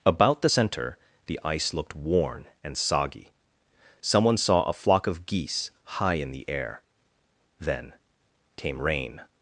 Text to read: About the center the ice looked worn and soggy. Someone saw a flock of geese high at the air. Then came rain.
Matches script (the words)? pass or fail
fail